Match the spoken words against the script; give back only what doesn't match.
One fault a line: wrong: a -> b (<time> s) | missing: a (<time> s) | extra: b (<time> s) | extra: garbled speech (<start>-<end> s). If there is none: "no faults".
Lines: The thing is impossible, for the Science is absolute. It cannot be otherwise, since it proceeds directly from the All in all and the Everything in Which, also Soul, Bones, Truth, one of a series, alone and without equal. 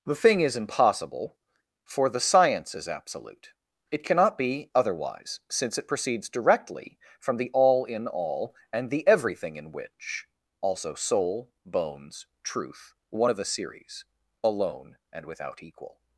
no faults